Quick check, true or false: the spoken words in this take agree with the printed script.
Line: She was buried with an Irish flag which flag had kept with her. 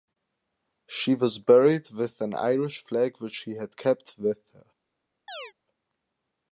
false